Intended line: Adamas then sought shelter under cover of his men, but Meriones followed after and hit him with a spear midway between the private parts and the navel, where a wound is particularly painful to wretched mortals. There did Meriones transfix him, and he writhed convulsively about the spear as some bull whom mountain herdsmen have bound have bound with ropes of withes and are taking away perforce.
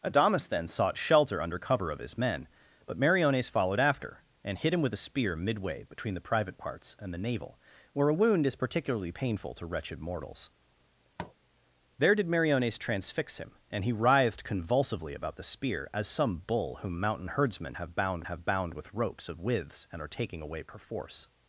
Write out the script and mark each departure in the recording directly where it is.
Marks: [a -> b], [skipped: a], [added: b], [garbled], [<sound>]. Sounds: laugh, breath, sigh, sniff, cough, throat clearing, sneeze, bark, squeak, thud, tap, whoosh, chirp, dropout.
Adamas then sought shelter under cover of his men, but Meriones followed after and hit him with a spear midway between the private parts and the navel, where a wound is particularly painful to wretched mortals. [tap] There did Meriones transfix him, and he writhed convulsively about the spear as some bull whom mountain herdsmen have bound have bound with ropes of withes and are taking away perforce.